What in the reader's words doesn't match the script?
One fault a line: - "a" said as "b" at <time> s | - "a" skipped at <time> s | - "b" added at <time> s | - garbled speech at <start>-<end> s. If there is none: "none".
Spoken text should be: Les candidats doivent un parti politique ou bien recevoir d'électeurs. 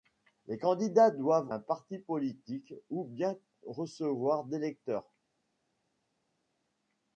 none